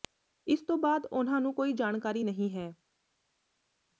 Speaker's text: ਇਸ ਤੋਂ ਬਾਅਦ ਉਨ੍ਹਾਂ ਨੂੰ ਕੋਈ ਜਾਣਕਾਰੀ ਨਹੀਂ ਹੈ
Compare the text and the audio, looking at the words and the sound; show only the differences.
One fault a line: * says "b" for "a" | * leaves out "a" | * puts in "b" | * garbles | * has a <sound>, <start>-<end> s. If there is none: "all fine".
all fine